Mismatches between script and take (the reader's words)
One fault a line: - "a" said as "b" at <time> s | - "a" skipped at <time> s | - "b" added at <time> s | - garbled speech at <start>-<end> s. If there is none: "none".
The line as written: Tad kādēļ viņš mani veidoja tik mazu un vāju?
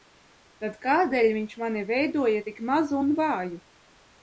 none